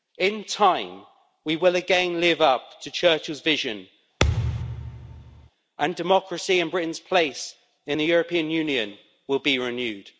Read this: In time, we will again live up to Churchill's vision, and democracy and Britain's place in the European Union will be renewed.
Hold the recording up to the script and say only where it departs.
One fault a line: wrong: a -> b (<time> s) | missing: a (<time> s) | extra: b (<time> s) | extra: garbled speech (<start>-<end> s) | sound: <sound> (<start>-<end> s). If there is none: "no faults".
sound: thud (4.2-5.5 s)